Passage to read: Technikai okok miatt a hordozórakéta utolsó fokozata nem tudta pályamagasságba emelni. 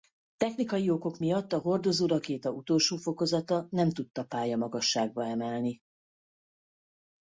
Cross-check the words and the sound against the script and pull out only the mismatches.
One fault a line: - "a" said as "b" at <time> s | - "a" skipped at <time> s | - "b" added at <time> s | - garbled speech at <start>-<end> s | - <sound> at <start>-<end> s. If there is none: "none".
none